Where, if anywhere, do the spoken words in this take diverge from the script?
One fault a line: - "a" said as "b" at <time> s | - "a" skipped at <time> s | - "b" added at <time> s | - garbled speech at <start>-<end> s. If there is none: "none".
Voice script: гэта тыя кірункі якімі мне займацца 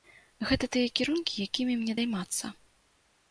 none